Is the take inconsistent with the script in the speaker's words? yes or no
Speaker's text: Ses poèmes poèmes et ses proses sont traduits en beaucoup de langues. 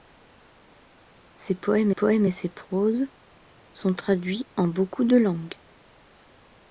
no